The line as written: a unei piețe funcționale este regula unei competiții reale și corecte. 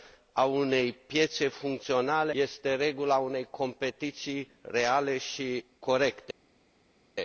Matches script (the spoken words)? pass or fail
pass